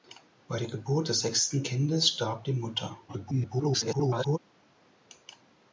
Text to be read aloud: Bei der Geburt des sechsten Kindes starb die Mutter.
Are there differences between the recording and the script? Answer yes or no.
yes